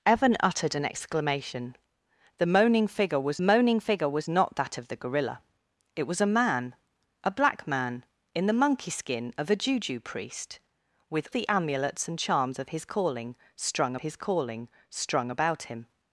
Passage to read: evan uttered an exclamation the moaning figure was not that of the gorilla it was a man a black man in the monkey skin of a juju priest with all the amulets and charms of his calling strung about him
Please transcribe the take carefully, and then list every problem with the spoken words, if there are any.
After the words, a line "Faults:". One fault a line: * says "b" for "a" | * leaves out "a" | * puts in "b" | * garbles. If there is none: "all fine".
evan uttered an exclamation the moaning figure was moaning figure was not that of the gorilla it was a man a black man in the monkey skin of a juju priest with the amulets and charms of his calling strung his calling strung about him
Faults:
* puts in "moaning figure was"
* leaves out "all"
* puts in "his calling strung"